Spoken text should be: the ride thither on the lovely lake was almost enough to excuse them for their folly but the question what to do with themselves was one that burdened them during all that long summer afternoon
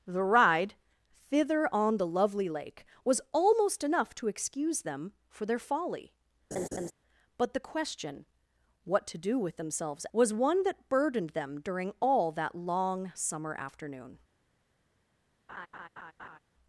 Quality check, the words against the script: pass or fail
pass